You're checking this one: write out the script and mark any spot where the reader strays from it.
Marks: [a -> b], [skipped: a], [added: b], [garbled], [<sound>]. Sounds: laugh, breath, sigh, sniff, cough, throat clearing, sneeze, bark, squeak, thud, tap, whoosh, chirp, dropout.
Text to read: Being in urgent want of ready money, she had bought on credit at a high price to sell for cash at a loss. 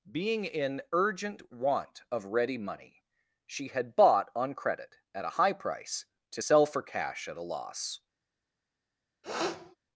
Being in urgent want of ready money, she had bought on credit at a high price to sell for cash at a loss. [sniff]